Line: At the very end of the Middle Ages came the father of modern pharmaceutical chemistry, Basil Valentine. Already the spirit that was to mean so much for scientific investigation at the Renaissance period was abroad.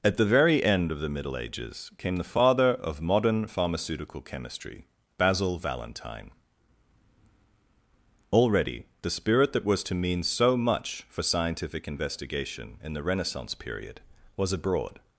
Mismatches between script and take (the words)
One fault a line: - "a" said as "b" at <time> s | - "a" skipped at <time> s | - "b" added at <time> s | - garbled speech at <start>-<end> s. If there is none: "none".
- "at" said as "in" at 12.8 s